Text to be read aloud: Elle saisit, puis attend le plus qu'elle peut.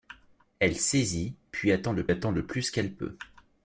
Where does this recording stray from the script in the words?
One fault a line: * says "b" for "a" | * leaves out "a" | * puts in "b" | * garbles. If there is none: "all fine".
* puts in "attend le"